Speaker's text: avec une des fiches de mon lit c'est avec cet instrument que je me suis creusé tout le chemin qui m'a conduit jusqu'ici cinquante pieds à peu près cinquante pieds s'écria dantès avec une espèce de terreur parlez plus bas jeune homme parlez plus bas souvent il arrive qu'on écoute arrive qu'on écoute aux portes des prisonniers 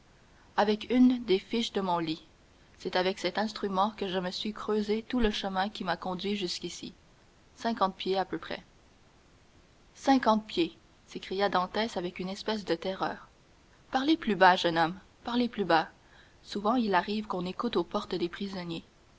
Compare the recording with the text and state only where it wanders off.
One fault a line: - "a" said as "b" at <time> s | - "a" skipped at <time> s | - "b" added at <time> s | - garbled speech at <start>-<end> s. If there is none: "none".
- "arrive qu'on écoute" skipped at 17.8 s